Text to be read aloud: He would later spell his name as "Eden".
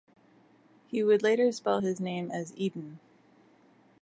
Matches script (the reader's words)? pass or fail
pass